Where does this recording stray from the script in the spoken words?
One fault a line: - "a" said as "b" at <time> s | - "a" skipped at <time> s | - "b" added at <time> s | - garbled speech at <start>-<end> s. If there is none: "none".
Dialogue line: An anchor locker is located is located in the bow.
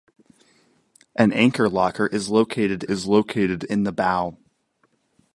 none